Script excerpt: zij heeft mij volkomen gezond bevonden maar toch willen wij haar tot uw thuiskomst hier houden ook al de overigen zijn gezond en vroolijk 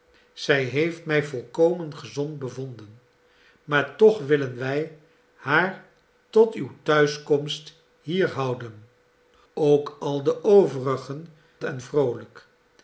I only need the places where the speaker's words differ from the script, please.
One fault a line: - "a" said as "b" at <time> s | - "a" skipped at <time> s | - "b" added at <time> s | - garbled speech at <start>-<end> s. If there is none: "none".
- "zijn gezond" skipped at 11.3 s